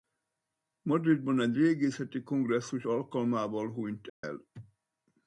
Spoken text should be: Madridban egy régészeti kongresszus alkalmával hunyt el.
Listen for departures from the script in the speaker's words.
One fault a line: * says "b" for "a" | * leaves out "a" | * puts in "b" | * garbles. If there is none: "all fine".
all fine